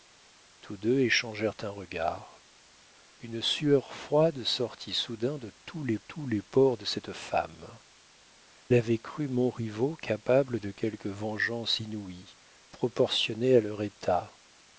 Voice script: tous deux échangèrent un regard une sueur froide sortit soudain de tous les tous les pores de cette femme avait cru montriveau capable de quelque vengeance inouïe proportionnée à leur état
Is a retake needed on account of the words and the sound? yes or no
no